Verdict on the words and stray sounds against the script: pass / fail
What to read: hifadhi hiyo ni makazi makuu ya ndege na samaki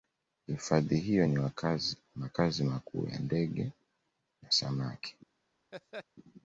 fail